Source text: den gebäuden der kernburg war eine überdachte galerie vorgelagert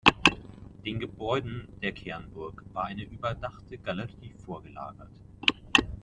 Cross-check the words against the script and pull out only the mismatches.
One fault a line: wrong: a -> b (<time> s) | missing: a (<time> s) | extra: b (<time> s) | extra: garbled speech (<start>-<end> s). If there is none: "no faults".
no faults